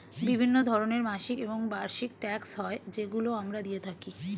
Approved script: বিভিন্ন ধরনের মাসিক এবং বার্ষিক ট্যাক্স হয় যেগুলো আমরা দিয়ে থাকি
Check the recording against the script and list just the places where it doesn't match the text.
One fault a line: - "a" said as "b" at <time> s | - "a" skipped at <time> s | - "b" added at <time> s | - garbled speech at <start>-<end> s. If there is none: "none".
none